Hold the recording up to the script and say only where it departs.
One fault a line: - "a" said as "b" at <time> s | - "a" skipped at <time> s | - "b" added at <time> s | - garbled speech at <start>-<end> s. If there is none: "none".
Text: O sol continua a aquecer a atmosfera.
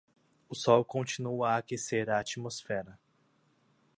none